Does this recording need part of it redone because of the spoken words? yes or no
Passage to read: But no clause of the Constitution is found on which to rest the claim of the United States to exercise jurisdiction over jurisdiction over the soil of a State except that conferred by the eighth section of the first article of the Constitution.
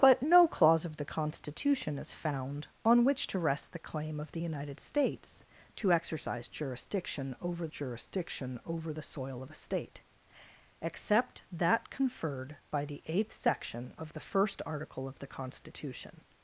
no